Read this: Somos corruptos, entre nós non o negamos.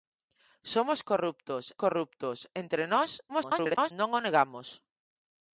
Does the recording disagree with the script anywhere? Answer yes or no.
yes